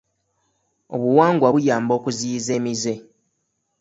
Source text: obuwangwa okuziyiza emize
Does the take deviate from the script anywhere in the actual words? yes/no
yes